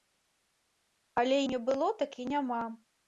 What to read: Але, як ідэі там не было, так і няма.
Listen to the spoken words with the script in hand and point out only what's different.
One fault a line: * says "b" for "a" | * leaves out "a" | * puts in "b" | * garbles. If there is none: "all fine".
* leaves out "як ідэі там"